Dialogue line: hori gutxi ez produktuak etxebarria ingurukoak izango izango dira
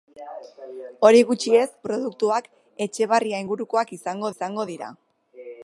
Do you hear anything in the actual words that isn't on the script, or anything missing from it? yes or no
no